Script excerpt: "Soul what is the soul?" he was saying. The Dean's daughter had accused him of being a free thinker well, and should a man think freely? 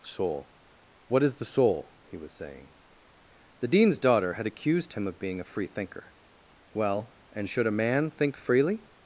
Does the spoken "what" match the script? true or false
true